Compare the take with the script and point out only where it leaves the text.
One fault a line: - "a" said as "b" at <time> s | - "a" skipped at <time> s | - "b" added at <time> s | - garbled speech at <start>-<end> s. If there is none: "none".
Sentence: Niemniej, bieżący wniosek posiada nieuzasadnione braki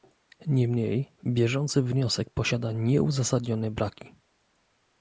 none